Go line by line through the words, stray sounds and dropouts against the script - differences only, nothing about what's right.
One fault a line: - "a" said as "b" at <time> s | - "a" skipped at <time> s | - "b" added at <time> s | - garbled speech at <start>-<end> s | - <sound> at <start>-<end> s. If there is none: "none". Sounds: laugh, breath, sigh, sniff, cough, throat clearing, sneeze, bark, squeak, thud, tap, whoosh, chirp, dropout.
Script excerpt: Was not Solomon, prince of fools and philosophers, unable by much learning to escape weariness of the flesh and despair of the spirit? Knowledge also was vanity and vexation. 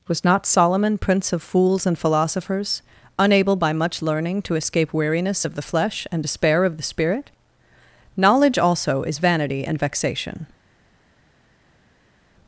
- "was" said as "is" at 9.0 s